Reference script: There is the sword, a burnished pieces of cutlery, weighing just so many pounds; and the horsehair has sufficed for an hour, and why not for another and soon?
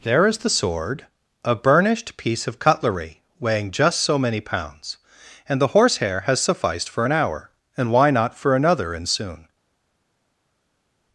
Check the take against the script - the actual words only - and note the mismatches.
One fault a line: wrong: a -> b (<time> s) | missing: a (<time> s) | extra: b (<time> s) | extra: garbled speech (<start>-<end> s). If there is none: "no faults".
wrong: pieces -> piece (2.2 s)